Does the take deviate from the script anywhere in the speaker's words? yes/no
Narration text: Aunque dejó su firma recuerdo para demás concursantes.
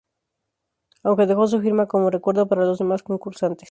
yes